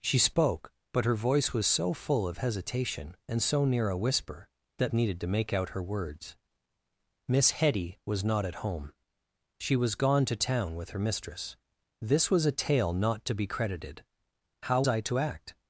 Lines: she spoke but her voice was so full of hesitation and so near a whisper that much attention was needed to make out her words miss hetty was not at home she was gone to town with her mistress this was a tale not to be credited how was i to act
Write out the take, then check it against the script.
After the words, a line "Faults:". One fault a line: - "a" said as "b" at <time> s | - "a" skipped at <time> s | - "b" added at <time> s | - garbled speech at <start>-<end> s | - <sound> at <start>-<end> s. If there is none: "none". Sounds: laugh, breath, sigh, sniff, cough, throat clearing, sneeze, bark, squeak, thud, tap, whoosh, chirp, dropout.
she spoke but her voice was so full of hesitation and so near a whisper that needed to make out her words miss hetty was not at home she was gone to town with her mistress this was a tale not to be credited how i to act
Faults:
- "much attention was" skipped at 4.9 s
- "was" skipped at 14.8 s